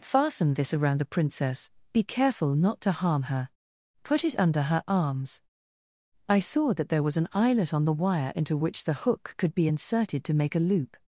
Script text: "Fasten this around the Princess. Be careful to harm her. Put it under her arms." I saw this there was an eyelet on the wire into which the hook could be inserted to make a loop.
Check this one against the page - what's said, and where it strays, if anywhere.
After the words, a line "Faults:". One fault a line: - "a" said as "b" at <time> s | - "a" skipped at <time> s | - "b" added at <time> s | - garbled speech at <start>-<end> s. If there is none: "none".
"Fasten this around the Princess. Be careful not to harm her. Put it under her arms." I saw that there was an eyelet on the wire into which the hook could be inserted to make a loop.
Faults:
- "not" added at 2.5 s
- "this" said as "that" at 6.7 s